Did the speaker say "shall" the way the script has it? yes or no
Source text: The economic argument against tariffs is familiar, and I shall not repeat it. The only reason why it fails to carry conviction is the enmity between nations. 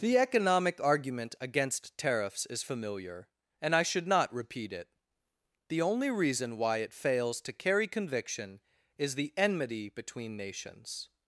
no